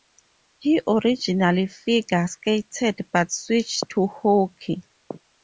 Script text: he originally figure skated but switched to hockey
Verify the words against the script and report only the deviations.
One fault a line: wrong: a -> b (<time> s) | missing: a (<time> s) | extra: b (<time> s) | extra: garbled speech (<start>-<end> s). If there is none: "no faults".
no faults